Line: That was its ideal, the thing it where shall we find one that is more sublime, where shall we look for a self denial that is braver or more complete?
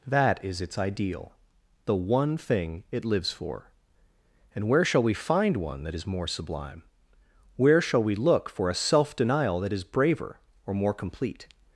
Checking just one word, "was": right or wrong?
wrong